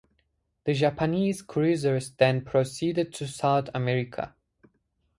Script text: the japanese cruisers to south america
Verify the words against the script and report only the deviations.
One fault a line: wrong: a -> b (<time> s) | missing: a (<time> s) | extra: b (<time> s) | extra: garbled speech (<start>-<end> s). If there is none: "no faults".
extra: then proceeded (2.1 s)